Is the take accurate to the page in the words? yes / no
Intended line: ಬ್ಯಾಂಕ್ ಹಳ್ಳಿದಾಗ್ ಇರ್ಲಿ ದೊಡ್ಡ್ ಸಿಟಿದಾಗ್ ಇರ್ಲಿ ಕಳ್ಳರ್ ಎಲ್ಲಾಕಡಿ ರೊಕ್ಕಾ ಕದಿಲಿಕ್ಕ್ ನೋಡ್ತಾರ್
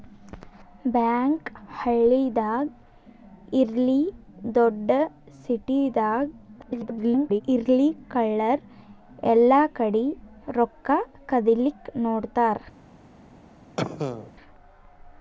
no